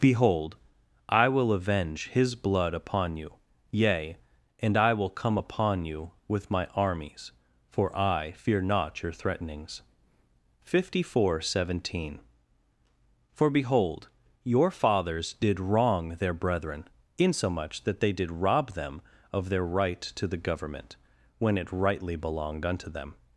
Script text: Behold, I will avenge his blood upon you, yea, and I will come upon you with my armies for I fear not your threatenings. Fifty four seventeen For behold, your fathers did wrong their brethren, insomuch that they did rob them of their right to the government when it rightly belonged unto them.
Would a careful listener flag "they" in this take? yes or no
no